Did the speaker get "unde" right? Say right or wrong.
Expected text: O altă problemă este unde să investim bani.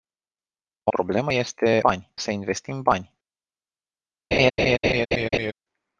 wrong